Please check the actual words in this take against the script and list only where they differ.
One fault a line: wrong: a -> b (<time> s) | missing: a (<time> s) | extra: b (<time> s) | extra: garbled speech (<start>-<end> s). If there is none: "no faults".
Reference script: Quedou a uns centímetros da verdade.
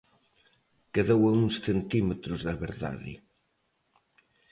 no faults